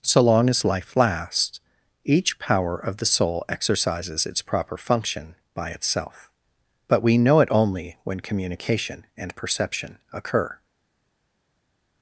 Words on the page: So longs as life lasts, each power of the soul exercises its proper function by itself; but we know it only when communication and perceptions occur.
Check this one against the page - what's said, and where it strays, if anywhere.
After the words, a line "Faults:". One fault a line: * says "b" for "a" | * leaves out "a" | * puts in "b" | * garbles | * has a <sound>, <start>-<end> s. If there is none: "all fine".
So long as life lasts, each power of the soul exercises its proper function by itself; but we know it only when communication and perception occur.
Faults:
* says "long" for "longs"
* says "perception" for "perceptions"